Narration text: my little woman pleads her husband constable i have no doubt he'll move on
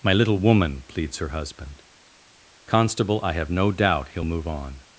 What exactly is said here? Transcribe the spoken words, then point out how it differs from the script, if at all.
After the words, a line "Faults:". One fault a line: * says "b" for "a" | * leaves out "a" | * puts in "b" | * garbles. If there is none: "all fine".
my little woman pleads her husband constable i have no doubt he'll move on
Faults:
all fine